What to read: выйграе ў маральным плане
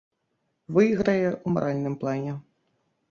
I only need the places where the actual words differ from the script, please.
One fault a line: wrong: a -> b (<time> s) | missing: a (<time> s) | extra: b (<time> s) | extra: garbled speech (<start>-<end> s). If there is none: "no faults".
no faults